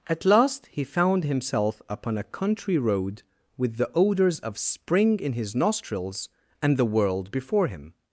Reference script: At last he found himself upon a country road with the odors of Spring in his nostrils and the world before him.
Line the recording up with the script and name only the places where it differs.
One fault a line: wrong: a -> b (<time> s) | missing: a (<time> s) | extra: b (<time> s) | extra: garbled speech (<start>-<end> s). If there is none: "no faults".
no faults